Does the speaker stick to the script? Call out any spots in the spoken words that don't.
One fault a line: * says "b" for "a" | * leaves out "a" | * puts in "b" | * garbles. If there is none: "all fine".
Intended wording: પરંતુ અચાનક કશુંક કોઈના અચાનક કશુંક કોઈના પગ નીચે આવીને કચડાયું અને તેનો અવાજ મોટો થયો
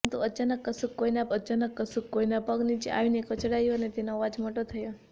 all fine